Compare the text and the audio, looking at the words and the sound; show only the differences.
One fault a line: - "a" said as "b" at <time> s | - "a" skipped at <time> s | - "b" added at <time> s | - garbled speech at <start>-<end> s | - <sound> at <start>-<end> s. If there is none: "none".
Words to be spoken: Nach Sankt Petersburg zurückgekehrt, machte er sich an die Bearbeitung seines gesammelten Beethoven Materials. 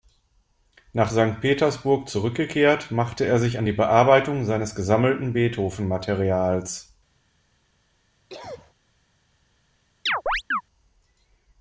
- cough at 8.3-8.7 s
- chirp at 10.1-10.6 s